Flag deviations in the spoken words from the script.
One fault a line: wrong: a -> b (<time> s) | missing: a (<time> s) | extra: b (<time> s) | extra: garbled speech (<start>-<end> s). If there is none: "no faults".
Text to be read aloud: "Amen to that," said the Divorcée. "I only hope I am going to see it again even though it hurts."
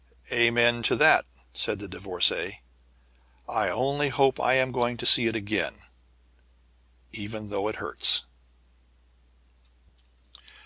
no faults